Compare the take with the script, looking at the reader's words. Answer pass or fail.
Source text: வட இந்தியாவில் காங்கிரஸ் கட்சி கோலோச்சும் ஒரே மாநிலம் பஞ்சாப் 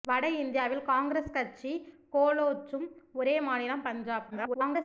fail